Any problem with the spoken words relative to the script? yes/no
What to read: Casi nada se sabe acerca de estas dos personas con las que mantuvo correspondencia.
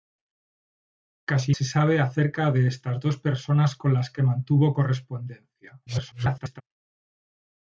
yes